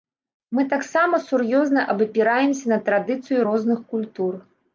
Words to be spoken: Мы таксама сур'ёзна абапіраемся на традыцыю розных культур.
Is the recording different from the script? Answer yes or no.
no